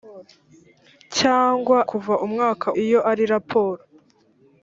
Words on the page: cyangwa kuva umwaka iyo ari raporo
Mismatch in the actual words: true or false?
false